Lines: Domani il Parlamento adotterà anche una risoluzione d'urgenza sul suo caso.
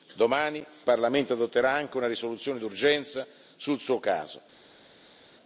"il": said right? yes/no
no